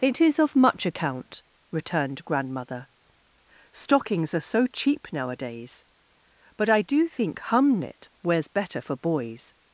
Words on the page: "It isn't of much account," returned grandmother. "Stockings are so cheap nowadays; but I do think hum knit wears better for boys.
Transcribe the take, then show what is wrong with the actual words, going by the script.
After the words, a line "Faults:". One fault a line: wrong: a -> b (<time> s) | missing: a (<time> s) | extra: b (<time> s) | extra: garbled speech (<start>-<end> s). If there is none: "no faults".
"It is of much account," returned grandmother. "Stockings are so cheap nowadays; but I do think hum knit wears better for boys.
Faults:
wrong: isn't -> is (0.2 s)